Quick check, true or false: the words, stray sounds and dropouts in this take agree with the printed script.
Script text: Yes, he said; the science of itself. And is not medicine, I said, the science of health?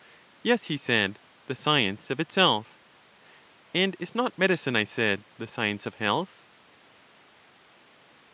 true